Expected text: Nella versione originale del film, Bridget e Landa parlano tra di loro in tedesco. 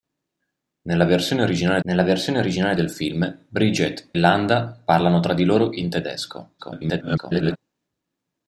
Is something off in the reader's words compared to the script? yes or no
yes